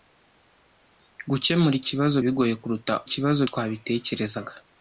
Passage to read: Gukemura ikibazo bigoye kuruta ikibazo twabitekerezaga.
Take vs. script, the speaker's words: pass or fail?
pass